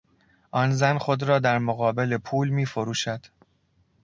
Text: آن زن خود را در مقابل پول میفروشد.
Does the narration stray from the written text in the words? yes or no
no